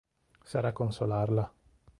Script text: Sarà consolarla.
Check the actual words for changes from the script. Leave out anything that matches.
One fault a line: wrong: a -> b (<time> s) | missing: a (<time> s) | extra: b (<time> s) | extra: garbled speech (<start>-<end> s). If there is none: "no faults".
no faults